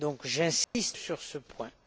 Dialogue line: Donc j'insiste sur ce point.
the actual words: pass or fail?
pass